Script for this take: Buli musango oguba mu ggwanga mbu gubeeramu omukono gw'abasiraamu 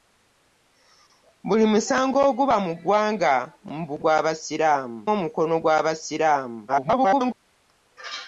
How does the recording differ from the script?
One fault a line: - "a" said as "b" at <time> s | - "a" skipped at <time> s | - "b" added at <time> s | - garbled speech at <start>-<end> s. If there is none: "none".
- "gubeeramu" said as "gw'abasiraamu" at 4.0 s
- garbled speech at 6.7-7.3 s